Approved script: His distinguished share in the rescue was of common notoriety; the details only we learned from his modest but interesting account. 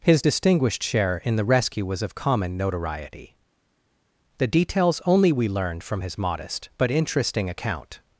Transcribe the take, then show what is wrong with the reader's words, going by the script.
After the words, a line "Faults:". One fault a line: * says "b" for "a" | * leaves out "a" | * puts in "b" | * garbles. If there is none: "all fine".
His distinguished share in the rescue was of common notoriety; the details only we learned from his modest but interesting account.
Faults:
all fine